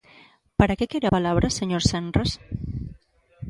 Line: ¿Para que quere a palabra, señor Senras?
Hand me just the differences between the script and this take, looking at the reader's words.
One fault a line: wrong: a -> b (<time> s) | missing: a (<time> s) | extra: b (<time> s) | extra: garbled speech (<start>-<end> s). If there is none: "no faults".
no faults